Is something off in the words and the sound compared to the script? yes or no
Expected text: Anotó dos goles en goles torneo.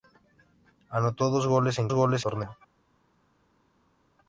no